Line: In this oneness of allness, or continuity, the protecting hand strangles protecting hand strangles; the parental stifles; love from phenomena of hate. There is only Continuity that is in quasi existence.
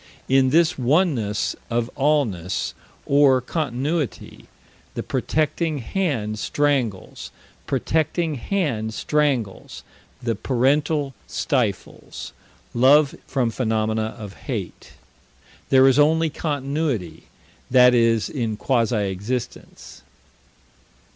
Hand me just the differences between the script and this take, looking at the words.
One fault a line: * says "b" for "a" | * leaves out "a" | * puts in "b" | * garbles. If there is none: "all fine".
all fine